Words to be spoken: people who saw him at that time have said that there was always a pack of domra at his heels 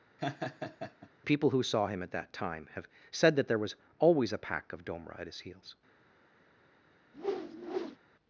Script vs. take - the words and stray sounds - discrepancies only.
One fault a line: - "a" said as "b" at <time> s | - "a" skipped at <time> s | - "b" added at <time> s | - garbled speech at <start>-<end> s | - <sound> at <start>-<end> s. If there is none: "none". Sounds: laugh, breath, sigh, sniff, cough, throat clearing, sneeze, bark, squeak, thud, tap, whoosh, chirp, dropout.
- laugh at 0.2-1.1 s
- whoosh at 7.1-8.0 s